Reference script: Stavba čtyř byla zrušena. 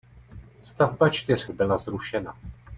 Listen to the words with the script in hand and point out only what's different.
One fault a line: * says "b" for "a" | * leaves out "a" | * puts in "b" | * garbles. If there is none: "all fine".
all fine